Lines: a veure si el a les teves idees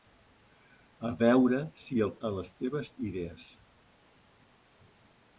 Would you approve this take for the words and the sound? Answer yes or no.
yes